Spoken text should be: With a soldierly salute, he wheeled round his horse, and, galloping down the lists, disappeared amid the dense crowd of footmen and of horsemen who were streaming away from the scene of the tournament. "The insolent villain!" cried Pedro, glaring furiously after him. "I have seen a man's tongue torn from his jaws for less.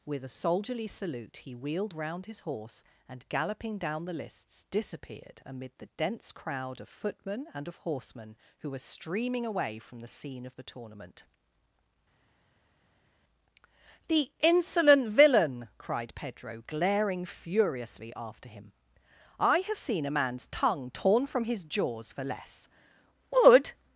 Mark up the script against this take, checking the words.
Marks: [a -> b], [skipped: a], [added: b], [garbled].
With a soldierly salute, he wheeled round his horse, and, galloping down the lists, disappeared amid the dense crowd of footmen and of horsemen who were streaming away from the scene of the tournament. "The insolent villain!" cried Pedro, glaring furiously after him. "I have seen a man's tongue torn from his jaws for less. [added: Would]